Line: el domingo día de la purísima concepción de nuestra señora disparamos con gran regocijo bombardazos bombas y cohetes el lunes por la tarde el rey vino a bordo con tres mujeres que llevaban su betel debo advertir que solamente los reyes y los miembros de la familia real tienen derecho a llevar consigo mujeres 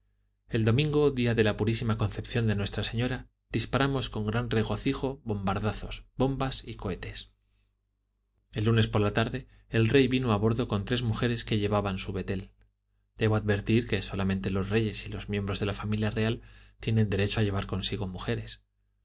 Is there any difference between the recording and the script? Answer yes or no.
no